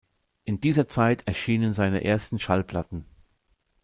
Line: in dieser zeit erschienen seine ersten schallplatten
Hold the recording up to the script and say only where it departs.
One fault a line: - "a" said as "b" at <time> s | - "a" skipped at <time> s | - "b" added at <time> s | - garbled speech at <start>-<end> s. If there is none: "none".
none